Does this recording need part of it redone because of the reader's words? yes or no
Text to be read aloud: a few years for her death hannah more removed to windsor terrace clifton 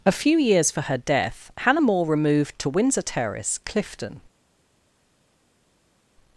no